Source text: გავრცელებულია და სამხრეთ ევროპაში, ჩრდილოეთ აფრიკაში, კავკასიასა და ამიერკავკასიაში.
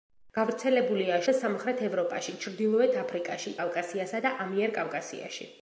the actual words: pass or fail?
pass